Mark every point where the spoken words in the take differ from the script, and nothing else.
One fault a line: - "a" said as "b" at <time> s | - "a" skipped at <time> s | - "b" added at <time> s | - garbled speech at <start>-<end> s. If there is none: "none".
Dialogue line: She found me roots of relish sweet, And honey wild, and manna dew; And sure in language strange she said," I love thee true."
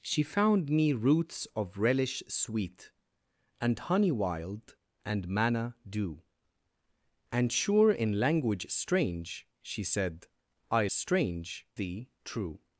- "love" said as "strange" at 10.9 s